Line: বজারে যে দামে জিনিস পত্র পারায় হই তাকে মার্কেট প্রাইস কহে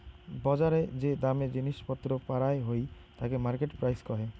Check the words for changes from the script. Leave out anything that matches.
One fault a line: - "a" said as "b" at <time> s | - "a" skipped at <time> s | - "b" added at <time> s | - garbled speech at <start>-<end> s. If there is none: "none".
none